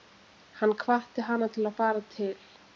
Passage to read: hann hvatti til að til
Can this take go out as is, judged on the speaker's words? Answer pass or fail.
fail